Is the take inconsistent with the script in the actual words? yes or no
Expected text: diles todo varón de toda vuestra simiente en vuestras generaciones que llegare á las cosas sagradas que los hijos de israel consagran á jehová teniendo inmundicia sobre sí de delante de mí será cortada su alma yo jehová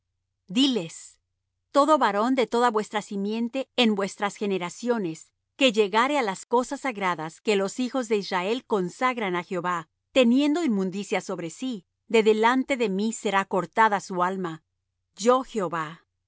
no